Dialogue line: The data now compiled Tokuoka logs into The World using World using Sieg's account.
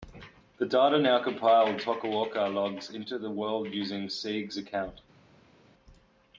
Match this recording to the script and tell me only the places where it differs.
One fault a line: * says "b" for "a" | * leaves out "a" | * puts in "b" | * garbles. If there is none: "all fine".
* leaves out "World using"